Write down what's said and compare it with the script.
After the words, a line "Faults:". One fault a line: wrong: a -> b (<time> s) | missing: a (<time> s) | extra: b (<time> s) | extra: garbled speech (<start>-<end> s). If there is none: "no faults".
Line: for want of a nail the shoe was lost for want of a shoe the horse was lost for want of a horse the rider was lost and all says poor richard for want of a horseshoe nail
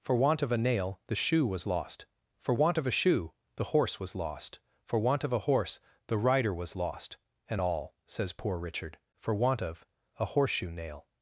for want of a nail the shoe was lost for want of a shoe the horse was lost for want of a horse the rider was lost and all says poor richard for want of a horseshoe nail
Faults:
no faults